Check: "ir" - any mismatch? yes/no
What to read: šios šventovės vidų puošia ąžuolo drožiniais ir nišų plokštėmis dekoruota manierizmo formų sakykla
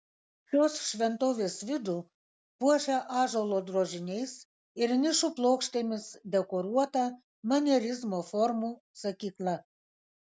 no